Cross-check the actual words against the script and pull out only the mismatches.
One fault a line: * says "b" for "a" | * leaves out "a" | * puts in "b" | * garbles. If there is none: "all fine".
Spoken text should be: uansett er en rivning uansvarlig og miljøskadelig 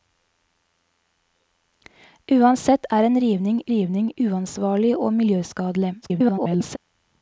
* puts in "rivning"
* garbles